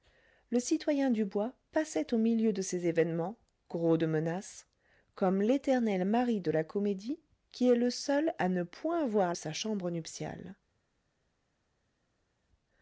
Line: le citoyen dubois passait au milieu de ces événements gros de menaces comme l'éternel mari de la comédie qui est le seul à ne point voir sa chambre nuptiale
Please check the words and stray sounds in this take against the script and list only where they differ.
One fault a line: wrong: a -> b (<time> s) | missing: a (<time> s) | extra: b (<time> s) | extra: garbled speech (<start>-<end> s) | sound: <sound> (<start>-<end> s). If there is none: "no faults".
no faults